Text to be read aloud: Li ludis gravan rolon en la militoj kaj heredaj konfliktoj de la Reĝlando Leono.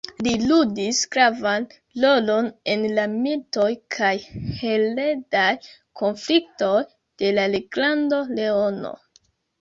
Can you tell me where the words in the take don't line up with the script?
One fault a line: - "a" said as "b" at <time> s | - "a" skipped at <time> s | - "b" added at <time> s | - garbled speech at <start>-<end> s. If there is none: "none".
none